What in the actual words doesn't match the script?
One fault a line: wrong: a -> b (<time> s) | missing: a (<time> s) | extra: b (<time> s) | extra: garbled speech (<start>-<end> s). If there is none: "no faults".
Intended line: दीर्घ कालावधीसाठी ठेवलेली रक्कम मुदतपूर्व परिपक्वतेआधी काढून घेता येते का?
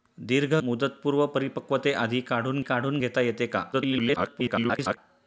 missing: कालावधीसाठी ठेवलेली रक्कम (0.5 s)
extra: काढून (2.6 s)
extra: garbled speech (3.7-5.0 s)